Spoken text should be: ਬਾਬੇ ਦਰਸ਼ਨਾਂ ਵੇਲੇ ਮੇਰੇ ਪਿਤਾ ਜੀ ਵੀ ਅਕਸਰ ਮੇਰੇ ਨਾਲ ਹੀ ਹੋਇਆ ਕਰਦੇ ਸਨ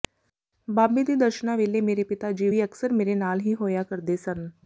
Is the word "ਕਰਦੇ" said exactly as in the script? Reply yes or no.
yes